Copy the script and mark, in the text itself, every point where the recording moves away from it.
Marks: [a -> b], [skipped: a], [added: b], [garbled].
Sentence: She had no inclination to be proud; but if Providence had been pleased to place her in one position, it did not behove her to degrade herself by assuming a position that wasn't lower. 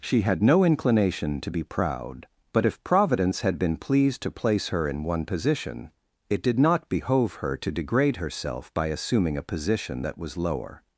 She had no inclination to be proud; but if Providence had been pleased to place her in one position, it did not behove her to degrade herself by assuming a position that [wasn't -> was] lower.